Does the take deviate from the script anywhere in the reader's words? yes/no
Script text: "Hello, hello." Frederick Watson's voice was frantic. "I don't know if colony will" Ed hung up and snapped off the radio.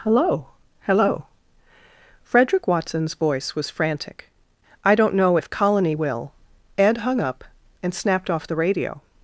no